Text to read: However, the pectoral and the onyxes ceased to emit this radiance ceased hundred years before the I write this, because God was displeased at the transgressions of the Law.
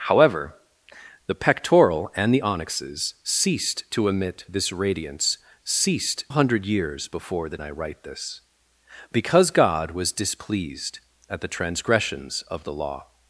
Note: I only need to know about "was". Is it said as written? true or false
true